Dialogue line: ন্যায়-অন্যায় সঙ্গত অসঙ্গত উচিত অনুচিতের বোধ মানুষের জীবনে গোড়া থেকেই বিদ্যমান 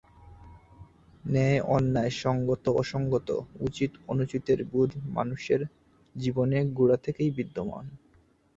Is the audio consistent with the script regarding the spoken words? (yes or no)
yes